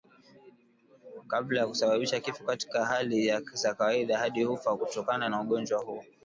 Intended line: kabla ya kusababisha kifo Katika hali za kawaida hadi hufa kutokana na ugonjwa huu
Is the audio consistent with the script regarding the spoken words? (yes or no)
yes